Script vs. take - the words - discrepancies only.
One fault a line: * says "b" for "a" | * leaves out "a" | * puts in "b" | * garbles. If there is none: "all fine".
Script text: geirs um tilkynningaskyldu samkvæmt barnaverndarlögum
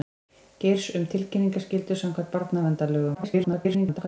* garbles